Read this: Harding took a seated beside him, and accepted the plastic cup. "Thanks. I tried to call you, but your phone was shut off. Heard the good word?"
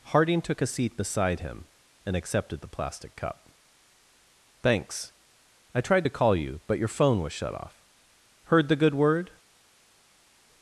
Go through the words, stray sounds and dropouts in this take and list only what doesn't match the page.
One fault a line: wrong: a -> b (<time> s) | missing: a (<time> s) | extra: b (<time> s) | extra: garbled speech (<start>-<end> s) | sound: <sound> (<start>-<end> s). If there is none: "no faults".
wrong: seated -> seat (0.7 s)